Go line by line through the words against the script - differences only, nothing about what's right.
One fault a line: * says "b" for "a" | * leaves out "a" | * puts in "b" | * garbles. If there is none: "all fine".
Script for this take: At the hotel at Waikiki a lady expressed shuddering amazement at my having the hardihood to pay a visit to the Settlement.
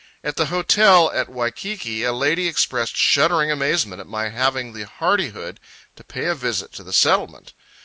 all fine